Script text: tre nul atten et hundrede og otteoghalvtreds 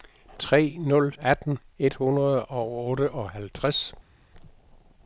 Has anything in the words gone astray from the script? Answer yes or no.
no